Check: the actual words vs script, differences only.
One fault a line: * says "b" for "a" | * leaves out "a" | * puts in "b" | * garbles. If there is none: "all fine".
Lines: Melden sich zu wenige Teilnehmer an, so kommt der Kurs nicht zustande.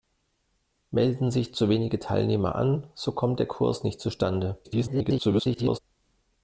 * garbles